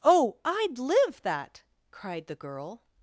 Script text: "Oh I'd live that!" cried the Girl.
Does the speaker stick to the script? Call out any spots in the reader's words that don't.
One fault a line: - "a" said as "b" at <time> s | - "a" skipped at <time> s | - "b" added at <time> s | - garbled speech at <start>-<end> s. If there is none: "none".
none